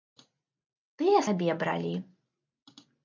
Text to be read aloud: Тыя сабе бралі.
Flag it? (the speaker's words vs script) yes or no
no